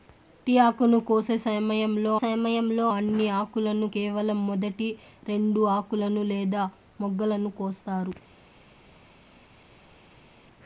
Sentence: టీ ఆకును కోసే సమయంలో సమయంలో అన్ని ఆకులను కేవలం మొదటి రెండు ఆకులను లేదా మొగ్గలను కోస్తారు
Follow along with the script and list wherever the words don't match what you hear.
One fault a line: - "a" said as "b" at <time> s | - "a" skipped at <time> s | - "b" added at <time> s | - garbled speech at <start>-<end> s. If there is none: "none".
none